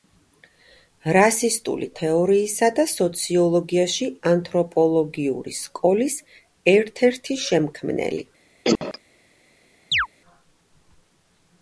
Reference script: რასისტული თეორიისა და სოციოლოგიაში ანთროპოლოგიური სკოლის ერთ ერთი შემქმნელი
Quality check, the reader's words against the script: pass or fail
pass